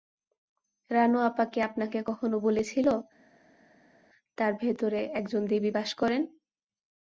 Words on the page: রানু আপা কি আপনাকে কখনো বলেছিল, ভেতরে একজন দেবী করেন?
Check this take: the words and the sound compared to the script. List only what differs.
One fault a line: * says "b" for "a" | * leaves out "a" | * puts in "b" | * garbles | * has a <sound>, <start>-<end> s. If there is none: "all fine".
* puts in "তার"
* puts in "বাস"